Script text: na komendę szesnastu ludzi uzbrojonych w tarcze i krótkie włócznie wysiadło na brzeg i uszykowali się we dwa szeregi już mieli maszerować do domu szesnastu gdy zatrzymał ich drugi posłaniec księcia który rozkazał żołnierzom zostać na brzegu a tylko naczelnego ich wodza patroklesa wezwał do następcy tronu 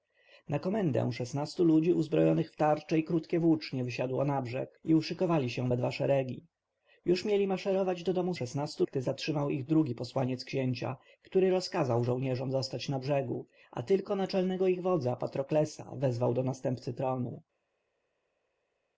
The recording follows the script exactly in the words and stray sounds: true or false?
true